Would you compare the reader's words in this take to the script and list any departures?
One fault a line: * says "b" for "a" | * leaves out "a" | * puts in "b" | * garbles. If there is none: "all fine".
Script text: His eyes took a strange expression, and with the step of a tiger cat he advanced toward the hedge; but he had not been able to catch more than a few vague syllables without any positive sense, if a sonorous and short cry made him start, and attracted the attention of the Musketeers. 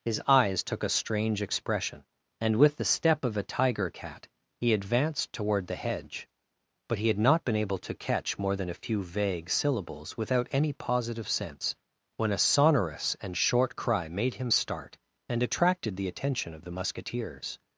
* says "when" for "if"